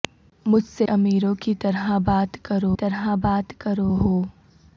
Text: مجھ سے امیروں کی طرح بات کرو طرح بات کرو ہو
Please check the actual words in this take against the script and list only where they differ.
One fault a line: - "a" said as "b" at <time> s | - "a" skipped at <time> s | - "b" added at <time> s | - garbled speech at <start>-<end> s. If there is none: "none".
none